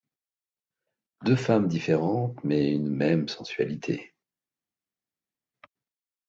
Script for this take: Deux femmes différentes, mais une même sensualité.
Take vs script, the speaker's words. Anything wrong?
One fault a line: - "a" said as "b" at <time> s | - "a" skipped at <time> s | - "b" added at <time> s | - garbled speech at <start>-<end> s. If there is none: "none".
none